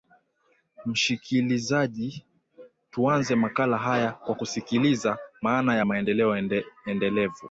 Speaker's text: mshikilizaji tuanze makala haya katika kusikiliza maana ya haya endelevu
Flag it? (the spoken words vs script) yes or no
yes